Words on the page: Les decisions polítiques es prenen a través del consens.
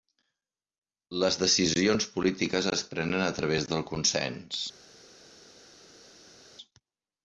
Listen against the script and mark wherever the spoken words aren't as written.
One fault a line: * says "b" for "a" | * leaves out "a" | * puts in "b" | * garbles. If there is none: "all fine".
all fine